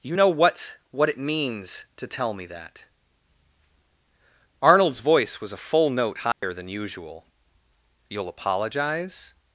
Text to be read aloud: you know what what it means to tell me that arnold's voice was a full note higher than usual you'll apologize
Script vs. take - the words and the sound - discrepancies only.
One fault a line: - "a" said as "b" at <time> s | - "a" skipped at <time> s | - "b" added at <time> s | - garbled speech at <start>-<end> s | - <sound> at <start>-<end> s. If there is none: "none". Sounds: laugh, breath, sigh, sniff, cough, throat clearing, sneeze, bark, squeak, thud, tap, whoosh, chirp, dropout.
- dropout at 6.3-6.4 s